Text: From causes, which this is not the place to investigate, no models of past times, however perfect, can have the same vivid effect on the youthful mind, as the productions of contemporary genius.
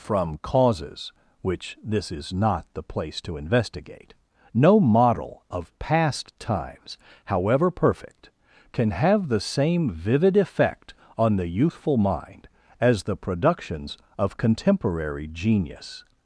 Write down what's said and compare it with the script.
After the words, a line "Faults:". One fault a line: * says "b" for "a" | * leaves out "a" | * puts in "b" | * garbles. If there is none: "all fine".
From causes, which this is not the place to investigate, no model of past times, however perfect, can have the same vivid effect on the youthful mind, as the productions of contemporary genius.
Faults:
* says "model" for "models"